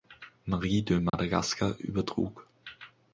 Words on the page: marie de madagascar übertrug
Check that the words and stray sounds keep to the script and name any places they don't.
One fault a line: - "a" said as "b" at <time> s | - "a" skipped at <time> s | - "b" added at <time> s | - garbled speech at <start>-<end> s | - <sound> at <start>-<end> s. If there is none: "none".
- dropout at 1.1-1.1 s